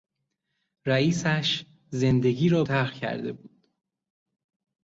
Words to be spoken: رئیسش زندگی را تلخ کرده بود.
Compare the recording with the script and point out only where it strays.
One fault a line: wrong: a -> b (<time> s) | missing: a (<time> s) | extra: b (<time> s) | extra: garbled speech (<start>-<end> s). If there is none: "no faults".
no faults